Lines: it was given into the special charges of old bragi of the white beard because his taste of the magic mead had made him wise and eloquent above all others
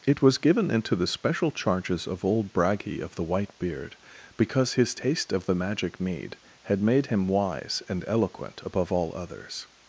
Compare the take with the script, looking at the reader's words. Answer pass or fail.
pass